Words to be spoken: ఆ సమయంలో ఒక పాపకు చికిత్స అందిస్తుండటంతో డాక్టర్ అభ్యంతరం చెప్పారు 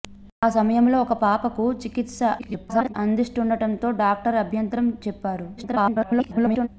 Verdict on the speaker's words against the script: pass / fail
fail